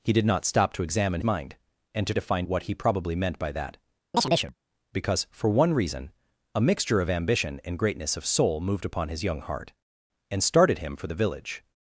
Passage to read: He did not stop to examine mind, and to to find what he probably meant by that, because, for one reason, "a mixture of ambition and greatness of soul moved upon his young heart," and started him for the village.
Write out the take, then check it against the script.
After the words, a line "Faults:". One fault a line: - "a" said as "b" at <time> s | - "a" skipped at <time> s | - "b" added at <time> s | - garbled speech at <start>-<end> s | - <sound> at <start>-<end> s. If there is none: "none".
He did not stop to examine mind, and to to find what he probably meant by that, because, for one reason, "a mixture of ambition and greatness of soul moved upon his young heart," and started him for the village.
Faults:
- chirp at 4.1-4.6 s